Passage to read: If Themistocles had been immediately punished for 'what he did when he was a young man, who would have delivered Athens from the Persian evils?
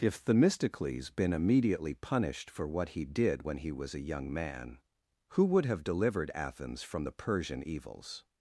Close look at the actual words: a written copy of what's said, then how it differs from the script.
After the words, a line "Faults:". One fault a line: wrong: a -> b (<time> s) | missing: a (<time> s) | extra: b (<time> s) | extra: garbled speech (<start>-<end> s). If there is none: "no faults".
If Themistocles been immediately punished for 'what he did when he was a young man, who would have delivered Athens from the Persian evils?
Faults:
missing: had (1.1 s)